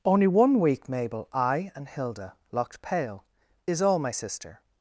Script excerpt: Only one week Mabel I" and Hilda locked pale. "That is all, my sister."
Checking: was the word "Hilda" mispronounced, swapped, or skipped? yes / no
no